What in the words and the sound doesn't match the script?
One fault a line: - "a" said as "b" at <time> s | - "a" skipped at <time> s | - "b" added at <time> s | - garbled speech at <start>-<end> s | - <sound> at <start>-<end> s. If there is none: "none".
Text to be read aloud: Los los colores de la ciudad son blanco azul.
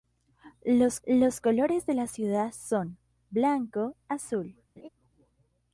- laugh at 4.8-4.9 s